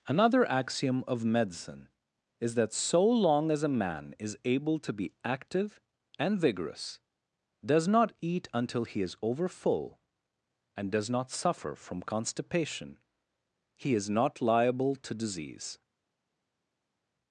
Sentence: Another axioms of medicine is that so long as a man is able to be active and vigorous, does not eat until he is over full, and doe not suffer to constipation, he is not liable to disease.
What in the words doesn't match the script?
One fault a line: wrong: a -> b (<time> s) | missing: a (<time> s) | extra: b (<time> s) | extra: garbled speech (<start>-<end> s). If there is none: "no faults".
wrong: axioms -> axiom (0.5 s)
wrong: doe -> does (10.9 s)
wrong: to -> from (11.7 s)